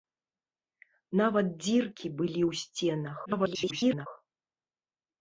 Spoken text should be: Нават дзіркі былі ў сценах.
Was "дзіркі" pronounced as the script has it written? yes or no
yes